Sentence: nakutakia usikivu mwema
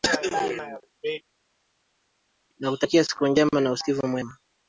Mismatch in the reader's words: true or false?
true